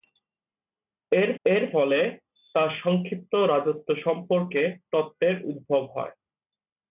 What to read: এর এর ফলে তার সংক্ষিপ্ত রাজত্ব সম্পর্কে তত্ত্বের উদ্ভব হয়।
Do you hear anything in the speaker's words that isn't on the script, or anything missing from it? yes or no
no